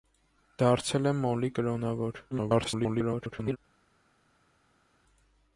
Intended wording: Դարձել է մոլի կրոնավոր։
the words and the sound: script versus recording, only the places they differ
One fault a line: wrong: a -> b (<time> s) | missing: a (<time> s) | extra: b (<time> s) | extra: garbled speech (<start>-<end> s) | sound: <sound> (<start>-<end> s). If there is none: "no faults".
extra: garbled speech (2.3-3.6 s)